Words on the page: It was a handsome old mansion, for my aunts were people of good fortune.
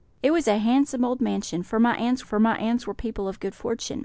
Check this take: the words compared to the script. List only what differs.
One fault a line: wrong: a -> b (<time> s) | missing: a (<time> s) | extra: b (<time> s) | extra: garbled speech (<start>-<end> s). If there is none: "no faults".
extra: for my aunts (2.2 s)